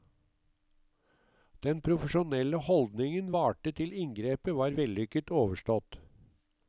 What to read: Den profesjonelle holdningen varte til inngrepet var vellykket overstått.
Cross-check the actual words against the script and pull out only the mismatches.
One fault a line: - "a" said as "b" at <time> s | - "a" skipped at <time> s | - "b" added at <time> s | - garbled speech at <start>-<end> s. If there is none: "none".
none